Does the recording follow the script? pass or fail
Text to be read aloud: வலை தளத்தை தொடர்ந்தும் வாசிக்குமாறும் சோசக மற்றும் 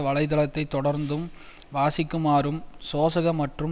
pass